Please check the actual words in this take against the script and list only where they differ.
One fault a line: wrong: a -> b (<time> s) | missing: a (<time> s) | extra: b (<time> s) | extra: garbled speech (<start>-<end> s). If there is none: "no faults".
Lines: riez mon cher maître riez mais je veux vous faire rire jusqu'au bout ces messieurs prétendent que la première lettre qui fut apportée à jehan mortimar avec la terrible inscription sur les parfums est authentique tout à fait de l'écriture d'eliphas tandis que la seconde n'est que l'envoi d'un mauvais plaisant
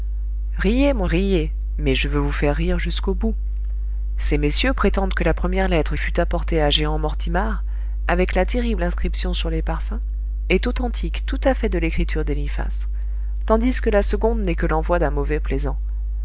missing: cher maître (1.1 s)
missing: qui (5.9 s)